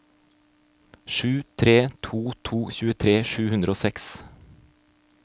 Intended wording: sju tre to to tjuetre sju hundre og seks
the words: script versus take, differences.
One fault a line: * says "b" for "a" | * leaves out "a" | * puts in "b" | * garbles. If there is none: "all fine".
all fine